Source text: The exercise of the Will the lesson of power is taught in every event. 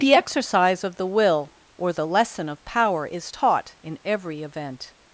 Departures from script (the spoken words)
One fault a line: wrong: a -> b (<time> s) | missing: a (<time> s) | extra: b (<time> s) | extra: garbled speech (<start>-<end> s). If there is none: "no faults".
extra: or (1.8 s)